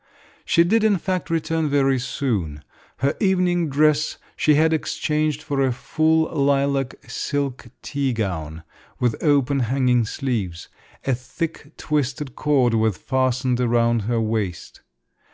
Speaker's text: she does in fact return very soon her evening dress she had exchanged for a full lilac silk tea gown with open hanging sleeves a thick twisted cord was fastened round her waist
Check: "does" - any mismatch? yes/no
yes